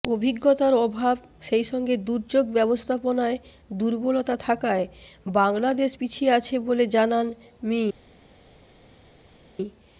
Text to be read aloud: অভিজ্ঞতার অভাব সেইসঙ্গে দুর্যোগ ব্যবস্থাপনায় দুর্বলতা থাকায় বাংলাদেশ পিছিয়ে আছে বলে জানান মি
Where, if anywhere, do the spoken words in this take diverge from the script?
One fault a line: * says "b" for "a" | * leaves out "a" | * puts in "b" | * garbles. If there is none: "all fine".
all fine